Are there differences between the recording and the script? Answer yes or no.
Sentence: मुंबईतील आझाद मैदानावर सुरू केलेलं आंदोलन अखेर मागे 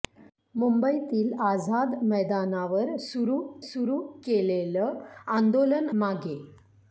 yes